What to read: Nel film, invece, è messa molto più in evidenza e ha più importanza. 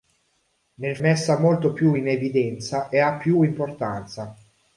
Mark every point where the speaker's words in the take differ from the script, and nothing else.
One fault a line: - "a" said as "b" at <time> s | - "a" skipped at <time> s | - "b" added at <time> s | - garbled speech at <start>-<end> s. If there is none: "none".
- "film invece è" skipped at 1.0 s